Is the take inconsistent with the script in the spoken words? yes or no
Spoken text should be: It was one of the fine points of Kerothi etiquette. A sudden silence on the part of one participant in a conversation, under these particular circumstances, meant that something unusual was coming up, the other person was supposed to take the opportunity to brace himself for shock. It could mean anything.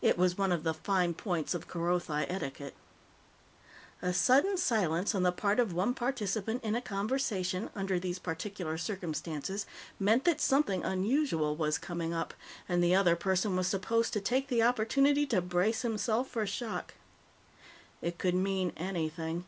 yes